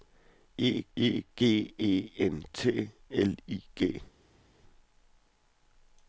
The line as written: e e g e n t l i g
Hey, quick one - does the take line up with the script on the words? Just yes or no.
yes